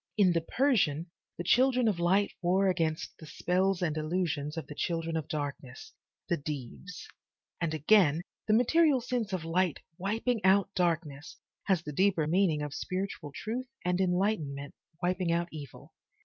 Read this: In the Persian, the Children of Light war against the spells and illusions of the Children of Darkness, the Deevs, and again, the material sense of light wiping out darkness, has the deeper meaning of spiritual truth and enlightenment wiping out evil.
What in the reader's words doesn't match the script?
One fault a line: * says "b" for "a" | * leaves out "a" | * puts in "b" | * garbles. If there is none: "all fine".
all fine